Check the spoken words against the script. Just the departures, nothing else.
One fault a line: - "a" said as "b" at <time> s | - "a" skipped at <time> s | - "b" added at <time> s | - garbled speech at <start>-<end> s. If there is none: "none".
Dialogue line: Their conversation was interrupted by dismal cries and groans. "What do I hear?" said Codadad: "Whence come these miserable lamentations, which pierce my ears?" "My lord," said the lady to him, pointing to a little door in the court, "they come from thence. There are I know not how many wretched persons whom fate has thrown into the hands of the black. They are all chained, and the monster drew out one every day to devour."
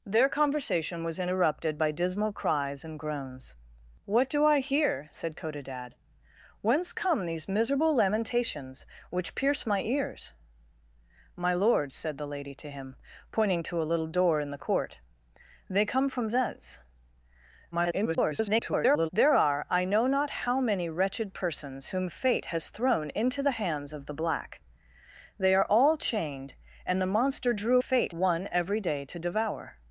- garbled speech at 17.7-19.1 s
- "out" said as "fate" at 27.8 s